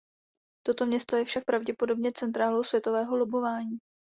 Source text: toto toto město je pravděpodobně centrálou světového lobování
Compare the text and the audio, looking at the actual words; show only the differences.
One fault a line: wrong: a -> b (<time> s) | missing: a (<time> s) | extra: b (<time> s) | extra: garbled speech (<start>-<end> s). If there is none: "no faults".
missing: toto (0.8 s)
extra: však (1.2 s)